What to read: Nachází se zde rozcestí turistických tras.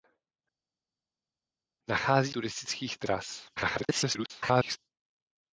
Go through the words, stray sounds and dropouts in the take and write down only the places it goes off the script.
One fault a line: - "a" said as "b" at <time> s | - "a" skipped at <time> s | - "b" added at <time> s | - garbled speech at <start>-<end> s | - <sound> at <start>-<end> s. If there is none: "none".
- "se zde rozcestí" skipped at 2.3 s
- garbled speech at 3.6-4.8 s